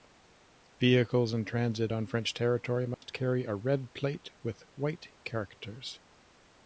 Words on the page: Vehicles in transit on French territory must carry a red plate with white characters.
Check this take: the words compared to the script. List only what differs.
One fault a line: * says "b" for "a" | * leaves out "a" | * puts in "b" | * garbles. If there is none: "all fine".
all fine